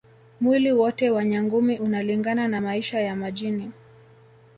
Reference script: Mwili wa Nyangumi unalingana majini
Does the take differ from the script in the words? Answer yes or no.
yes